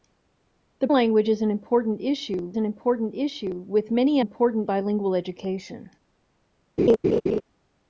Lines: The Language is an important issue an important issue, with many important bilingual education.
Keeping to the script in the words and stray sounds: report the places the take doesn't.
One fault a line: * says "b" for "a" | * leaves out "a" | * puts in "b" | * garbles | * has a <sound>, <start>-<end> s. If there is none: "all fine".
* has a laugh, 6.8-7.4 s